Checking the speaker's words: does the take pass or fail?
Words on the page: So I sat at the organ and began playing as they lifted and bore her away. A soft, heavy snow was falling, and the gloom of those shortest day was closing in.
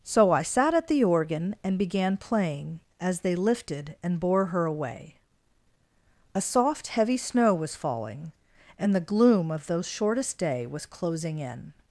pass